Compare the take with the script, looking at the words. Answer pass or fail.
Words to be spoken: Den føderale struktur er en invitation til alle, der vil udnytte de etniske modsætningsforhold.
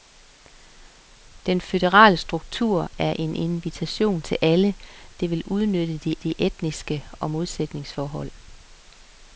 fail